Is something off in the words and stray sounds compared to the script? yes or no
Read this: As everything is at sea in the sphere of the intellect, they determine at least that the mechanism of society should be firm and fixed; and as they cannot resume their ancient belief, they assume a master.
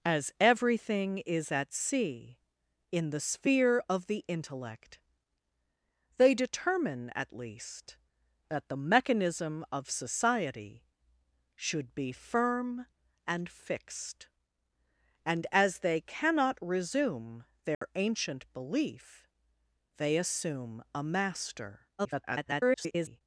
yes